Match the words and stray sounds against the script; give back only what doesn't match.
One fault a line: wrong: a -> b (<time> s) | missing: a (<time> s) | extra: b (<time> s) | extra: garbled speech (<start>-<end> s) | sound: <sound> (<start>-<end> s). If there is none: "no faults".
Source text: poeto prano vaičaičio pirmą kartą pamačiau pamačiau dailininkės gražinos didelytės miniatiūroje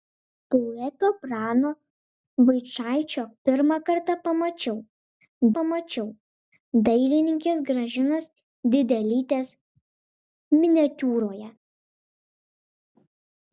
no faults